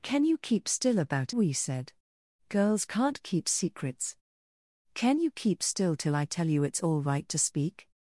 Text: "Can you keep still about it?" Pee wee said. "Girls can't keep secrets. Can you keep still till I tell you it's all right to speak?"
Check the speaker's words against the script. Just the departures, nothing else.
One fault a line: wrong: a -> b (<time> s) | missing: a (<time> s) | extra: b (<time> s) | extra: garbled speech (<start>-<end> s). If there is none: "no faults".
missing: it Pee (1.4 s)